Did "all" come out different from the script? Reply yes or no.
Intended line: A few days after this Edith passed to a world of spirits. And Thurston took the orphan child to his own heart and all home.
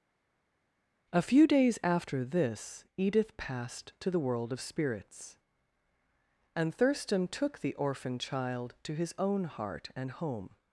yes